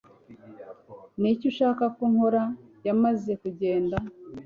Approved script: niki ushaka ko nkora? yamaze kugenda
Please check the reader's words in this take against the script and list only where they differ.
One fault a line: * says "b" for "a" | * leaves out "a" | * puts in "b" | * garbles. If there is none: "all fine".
all fine